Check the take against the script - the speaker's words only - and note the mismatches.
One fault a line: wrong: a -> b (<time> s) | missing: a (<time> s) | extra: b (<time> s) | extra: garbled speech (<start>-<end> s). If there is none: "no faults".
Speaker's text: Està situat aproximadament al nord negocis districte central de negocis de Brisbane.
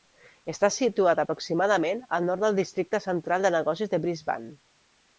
wrong: negocis -> del (2.5 s)